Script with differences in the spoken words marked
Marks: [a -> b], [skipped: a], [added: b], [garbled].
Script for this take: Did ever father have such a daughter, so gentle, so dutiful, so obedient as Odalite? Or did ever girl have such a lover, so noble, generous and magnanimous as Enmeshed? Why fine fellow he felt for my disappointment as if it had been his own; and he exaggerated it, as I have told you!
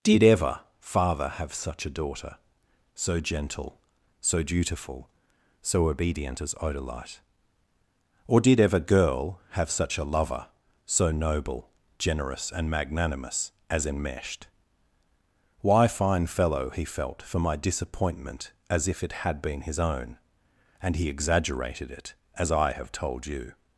Did ever father have such a daughter, so gentle, so dutiful, so obedient as Odalite? Or did ever girl have such a lover, so noble, generous and magnanimous as Enmeshed? Why fine fellow he felt for my disappointment as if it had been his own; and he exaggerated it, as I have told you!